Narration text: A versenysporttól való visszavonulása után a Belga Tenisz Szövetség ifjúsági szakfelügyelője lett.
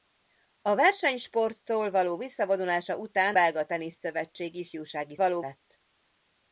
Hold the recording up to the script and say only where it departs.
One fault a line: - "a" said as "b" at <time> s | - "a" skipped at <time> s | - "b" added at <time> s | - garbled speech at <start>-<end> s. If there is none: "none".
- "a" skipped at 3.4 s
- "szakfelügyelője" said as "való" at 5.2 s